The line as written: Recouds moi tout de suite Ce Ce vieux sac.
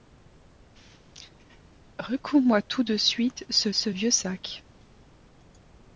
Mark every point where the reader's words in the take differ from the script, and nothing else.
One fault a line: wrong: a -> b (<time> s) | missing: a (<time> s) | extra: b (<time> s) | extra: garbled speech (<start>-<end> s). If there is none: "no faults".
no faults